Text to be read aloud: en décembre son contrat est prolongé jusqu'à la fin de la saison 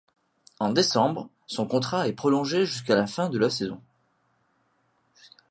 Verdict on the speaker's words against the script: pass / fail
pass